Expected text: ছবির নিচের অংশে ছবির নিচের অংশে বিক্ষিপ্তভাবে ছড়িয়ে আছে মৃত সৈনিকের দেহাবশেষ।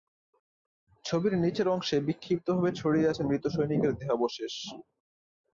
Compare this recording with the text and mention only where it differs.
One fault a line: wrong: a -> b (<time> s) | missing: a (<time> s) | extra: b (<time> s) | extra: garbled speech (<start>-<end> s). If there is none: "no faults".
missing: ছবির নিচের অংশে (2.0 s)